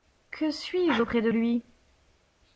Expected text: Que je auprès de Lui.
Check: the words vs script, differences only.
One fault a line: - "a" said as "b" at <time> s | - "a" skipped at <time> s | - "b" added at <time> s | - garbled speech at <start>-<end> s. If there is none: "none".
- "suis" added at 0.5 s